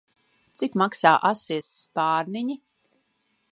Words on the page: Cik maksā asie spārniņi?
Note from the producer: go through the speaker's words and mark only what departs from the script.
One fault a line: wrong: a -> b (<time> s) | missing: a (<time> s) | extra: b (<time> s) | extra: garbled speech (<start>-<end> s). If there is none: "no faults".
no faults